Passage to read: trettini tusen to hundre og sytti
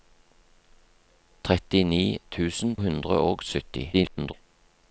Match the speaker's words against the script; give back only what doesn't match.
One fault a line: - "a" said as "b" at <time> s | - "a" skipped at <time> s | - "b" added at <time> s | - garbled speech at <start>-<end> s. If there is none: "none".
- "to" skipped at 2.8 s
- garbled speech at 3.9-4.3 s